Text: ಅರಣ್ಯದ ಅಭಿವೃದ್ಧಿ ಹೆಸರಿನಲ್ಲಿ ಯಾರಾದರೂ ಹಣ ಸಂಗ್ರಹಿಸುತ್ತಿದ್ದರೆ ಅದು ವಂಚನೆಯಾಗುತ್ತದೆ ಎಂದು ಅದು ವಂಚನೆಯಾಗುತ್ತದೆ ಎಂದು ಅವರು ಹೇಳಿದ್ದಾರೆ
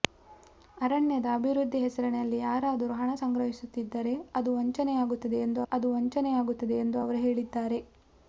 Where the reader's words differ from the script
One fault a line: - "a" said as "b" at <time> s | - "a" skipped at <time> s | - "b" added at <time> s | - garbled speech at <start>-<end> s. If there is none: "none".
none